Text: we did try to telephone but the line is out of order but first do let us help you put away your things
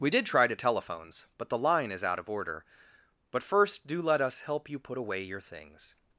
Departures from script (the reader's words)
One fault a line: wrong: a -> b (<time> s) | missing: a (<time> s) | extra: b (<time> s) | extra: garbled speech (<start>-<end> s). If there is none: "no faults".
wrong: telephone -> telephones (0.6 s)